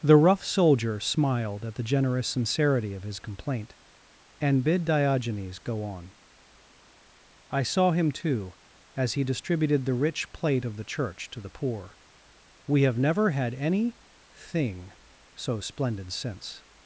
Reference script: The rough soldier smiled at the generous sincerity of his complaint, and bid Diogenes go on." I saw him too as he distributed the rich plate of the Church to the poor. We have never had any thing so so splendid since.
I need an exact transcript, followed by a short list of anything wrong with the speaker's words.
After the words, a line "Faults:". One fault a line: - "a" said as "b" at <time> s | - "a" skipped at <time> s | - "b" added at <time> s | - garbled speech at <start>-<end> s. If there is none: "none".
The rough soldier smiled at the generous sincerity of his complaint, and bid Diogenes go on." I saw him too as he distributed the rich plate of the Church to the poor. We have never had any thing so splendid since.
Faults:
- "so" skipped at 15.6 s